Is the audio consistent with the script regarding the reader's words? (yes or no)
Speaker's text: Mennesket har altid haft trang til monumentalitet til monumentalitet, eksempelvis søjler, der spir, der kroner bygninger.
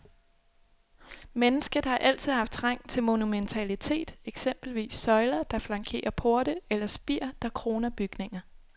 no